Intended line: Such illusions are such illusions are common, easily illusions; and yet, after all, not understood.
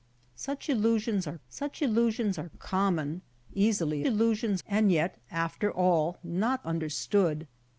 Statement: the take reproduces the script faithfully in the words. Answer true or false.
true